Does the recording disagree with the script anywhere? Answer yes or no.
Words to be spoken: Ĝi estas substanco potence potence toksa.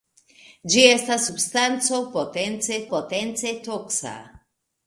no